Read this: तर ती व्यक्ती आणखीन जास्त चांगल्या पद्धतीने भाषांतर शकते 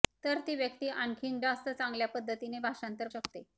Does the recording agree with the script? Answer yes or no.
yes